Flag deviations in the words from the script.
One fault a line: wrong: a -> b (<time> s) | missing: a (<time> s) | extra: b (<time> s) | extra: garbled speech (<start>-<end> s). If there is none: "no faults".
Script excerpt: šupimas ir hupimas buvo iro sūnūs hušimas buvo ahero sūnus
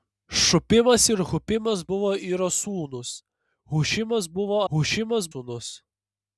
wrong: ahero -> hušimas (4.7 s)